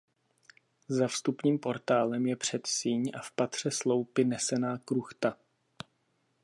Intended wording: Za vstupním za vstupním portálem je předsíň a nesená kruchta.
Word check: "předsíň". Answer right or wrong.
right